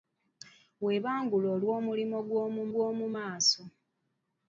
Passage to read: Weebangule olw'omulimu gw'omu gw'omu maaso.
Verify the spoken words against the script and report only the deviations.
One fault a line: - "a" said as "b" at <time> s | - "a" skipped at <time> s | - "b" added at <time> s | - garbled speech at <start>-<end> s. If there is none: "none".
none